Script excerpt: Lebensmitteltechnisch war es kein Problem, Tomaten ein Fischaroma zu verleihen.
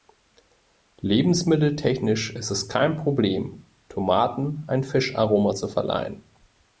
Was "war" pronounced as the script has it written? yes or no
no